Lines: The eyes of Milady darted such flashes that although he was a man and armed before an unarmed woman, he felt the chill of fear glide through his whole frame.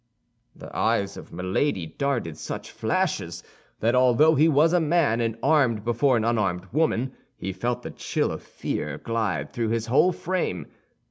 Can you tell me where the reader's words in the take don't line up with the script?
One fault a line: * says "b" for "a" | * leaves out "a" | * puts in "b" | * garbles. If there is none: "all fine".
all fine